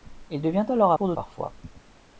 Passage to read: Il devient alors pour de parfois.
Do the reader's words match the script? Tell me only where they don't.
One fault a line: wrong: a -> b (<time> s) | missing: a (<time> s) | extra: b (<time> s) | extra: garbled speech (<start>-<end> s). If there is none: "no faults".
no faults